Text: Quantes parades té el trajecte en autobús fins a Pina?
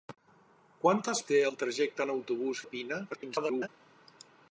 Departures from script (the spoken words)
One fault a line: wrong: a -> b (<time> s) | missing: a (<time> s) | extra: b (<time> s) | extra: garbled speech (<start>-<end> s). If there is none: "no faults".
missing: parades (1.2 s)
missing: fins (2.6 s)
extra: garbled speech (3.1-3.7 s)